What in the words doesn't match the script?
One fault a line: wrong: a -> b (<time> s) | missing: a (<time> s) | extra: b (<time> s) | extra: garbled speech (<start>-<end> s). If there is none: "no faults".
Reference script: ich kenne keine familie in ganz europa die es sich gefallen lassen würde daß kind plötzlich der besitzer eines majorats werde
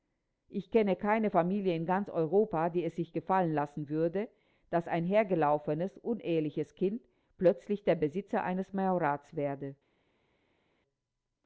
extra: ein hergelaufenes uneheliches (4.9 s)